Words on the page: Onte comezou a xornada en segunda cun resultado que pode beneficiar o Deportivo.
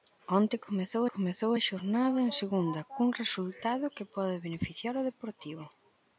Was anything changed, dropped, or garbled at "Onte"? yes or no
no